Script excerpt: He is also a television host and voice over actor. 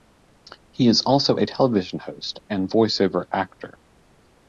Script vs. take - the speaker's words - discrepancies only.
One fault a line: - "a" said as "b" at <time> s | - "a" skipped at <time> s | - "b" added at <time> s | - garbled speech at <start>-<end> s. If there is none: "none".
none